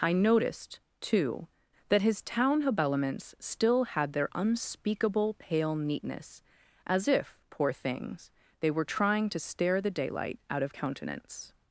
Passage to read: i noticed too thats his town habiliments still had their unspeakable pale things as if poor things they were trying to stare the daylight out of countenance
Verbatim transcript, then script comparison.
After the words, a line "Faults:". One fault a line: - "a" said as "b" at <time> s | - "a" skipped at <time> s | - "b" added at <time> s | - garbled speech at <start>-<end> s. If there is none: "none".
i noticed too that his town habiliments still had their unspeakable pale neatness as if poor things they were trying to stare the daylight out of countenance
Faults:
- "thats" said as "that" at 1.9 s
- "things" said as "neatness" at 5.8 s